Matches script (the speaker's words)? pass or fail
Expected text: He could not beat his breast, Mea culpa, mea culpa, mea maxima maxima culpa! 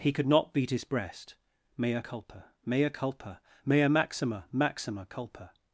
pass